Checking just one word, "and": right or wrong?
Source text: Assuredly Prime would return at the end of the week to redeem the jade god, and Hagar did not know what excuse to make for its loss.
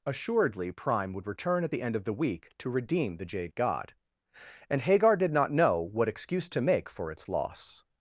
right